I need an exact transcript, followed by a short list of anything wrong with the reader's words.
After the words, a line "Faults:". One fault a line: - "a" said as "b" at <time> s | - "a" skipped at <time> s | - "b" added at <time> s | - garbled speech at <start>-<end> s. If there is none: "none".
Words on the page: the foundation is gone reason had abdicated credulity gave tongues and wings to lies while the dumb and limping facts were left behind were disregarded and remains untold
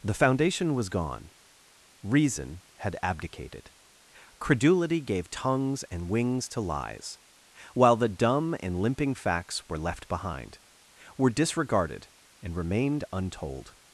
the foundation was gone reason had abdicated credulity gave tongues and wings to lies while the dumb and limping facts were left behind were disregarded and remained untold
Faults:
- "is" said as "was" at 0.7 s
- "remains" said as "remained" at 12.6 s